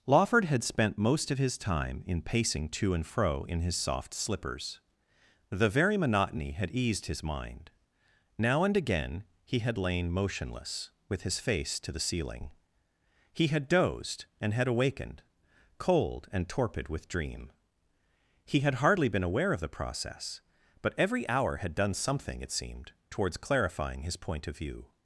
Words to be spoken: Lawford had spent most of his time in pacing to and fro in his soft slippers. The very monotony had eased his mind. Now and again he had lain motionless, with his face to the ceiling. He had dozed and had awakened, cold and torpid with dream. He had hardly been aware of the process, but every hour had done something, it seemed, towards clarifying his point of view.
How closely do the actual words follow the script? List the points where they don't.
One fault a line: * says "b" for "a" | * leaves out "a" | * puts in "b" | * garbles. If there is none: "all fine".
all fine